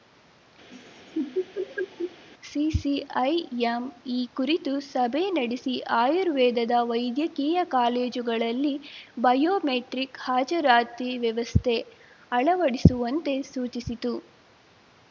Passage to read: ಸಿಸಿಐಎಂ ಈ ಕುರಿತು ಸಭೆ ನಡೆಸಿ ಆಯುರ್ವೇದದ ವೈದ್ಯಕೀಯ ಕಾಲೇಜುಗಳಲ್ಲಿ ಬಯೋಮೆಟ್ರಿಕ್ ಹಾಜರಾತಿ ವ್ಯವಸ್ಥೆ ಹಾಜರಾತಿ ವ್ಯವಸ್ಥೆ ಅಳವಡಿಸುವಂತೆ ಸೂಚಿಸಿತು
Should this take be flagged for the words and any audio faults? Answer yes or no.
yes